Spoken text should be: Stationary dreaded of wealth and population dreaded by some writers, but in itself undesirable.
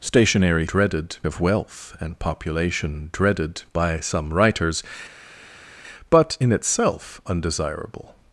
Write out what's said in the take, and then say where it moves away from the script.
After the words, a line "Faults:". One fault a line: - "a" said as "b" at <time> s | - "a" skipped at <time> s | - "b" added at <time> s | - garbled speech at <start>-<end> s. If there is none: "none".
Stationary dreaded of wealth and population dreaded by some writers, but in itself undesirable.
Faults:
none